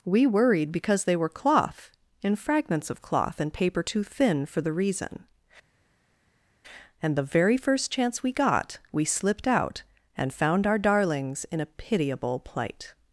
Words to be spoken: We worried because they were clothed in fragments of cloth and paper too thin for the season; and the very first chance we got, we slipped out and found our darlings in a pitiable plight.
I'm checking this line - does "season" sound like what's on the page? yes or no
no